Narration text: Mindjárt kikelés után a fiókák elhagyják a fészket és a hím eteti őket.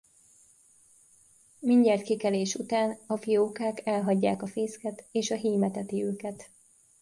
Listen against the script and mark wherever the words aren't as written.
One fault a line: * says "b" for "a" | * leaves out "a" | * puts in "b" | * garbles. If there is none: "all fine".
all fine